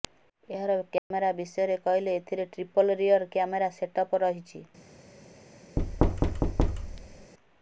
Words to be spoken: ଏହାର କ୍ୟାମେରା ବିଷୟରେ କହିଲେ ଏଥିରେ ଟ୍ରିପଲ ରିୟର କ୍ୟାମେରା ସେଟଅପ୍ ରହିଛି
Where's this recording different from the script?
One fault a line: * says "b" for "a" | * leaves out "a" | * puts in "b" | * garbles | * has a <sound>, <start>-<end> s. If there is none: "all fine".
* has a dropout, 1.0-1.1 s
* has a thud, 5.8-7.3 s